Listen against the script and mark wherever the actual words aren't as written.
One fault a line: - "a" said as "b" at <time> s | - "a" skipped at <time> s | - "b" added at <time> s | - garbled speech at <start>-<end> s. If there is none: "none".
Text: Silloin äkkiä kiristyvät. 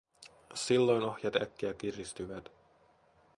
- "ohjat" added at 1.0 s